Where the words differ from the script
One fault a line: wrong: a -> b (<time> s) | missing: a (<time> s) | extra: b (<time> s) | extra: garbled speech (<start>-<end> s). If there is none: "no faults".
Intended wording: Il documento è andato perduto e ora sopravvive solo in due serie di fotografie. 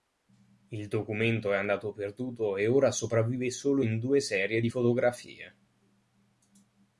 no faults